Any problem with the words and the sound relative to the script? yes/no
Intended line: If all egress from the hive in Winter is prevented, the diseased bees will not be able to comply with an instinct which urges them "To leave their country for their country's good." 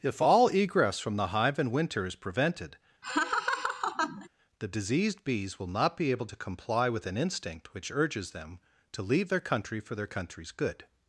yes